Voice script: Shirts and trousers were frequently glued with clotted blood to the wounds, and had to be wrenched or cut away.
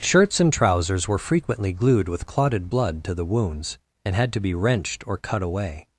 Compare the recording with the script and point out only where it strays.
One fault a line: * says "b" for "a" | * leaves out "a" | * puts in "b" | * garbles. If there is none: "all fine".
all fine